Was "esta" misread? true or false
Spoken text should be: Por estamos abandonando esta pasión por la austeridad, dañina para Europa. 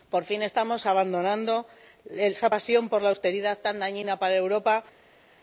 true